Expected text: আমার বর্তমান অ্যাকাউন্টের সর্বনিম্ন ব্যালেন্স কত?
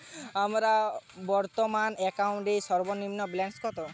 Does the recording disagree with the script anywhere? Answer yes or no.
no